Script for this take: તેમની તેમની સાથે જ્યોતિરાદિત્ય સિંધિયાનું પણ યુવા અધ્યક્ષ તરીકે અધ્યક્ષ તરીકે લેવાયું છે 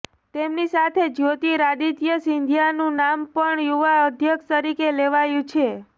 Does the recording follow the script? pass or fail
fail